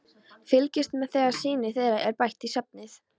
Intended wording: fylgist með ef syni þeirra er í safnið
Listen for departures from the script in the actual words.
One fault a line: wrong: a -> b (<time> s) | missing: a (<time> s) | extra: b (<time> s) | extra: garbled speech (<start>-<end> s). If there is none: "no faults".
wrong: ef -> þegar (1.2 s)
extra: bætt (2.2 s)